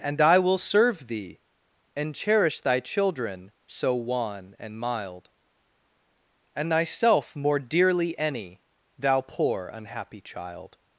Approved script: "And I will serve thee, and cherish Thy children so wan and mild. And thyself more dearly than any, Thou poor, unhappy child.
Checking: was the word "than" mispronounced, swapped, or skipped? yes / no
yes